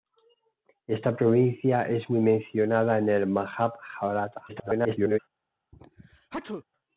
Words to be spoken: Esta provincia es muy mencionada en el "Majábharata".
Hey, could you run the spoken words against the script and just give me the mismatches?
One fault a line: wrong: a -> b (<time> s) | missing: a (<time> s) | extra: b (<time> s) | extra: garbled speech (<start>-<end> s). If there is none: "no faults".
extra: garbled speech (4.5-5.2 s)